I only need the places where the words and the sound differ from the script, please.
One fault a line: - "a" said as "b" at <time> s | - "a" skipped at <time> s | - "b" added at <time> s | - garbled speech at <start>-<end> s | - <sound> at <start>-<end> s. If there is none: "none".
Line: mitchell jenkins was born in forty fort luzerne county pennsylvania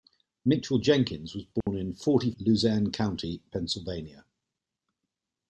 - dropout at 1.6-1.7 s
- "fort" skipped at 2.3 s